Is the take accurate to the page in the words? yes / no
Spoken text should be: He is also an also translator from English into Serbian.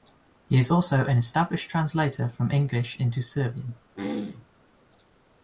no